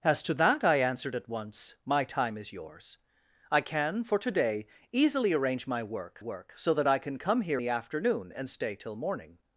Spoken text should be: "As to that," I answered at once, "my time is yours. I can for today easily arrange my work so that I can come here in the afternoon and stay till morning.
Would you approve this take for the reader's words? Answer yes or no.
no